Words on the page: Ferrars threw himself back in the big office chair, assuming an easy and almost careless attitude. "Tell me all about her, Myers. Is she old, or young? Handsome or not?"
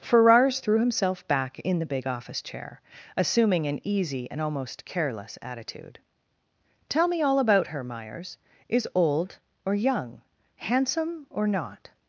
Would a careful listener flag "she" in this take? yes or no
yes